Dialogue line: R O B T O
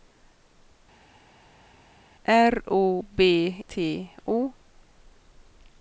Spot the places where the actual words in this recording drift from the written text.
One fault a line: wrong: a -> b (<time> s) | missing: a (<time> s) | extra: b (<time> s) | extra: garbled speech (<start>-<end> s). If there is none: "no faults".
no faults